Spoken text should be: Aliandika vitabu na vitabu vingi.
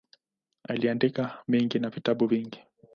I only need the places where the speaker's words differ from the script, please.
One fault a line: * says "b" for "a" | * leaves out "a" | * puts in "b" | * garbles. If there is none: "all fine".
* says "mengi" for "vitabu"